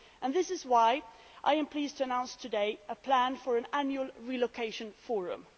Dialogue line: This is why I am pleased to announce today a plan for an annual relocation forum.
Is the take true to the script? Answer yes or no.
yes